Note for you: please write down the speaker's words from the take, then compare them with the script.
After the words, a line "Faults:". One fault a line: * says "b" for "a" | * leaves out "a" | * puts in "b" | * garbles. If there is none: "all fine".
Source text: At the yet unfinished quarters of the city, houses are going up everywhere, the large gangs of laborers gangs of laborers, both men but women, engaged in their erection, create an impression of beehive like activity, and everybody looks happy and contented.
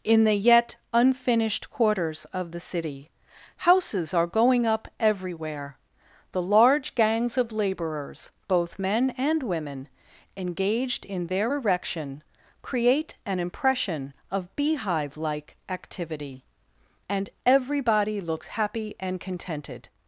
In the yet unfinished quarters of the city, houses are going up everywhere, the large gangs of laborers, both men and women, engaged in their erection, create an impression of beehive like activity, and everybody looks happy and contented.
Faults:
* says "In" for "At"
* leaves out "gangs of laborers"
* says "and" for "but"